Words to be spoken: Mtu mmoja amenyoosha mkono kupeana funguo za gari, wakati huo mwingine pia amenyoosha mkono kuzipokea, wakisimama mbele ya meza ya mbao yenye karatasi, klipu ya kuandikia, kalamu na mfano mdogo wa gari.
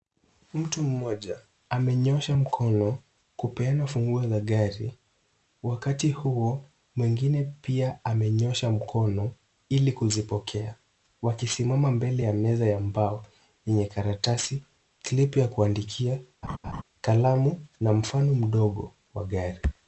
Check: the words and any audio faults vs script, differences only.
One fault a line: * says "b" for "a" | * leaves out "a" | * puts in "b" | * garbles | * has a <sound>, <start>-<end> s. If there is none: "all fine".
* puts in "ili"
* has a laugh, 16.4-16.8 s